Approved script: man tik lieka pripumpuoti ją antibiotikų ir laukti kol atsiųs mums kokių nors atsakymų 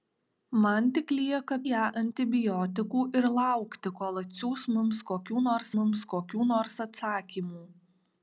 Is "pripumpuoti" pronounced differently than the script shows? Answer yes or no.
yes